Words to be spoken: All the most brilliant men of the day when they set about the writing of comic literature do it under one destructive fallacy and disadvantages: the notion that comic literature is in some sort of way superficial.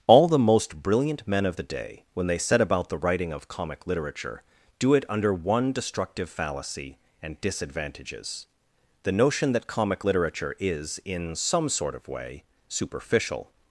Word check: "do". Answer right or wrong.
right